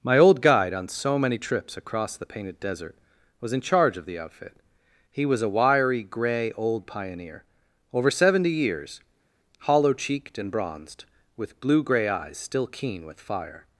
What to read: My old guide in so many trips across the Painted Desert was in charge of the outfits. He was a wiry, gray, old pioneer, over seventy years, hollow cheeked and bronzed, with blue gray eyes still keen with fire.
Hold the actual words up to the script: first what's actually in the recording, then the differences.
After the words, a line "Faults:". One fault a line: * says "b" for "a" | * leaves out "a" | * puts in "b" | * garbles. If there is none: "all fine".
My old guide on so many trips across the Painted Desert was in charge of the outfit. He was a wiry, gray, old pioneer, over seventy years, hollow cheeked and bronzed, with blue gray eyes still keen with fire.
Faults:
* says "on" for "in"
* says "outfit" for "outfits"